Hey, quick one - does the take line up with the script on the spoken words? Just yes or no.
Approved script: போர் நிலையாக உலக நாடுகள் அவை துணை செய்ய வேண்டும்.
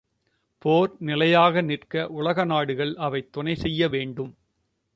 no